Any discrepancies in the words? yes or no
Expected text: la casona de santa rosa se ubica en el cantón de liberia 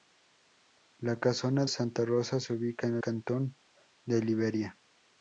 yes